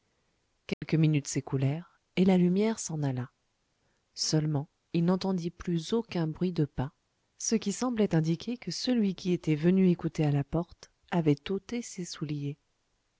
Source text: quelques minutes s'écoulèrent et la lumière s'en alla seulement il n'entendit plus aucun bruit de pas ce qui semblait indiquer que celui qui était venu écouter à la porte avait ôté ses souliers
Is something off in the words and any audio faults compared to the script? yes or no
yes